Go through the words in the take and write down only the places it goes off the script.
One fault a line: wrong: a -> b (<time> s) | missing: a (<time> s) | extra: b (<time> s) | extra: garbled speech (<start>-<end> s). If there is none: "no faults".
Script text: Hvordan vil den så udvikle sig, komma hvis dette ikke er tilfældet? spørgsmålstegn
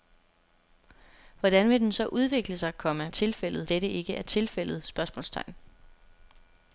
wrong: hvis -> tilfældet (3.1 s)